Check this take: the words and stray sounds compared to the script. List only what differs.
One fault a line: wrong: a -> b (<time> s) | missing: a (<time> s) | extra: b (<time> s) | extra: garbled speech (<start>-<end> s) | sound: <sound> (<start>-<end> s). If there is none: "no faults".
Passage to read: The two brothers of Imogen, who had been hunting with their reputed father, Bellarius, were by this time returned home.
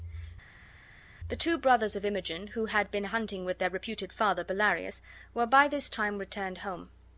no faults